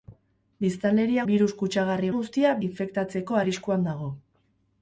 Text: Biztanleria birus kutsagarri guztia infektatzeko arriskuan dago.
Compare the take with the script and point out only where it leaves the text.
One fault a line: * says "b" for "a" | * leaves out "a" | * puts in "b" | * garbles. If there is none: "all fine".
all fine